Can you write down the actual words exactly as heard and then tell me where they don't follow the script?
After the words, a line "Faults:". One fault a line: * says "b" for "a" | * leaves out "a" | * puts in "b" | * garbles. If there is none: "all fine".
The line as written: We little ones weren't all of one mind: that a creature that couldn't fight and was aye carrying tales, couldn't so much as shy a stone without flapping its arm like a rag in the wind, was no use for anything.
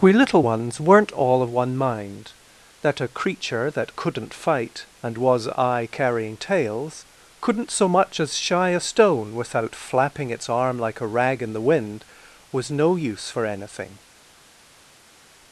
We little ones weren't all of one mind: that a creature that couldn't fight and was aye carrying tales, couldn't so much as shy a stone without flapping its arm like a rag in the wind, was no use for anything.
Faults:
all fine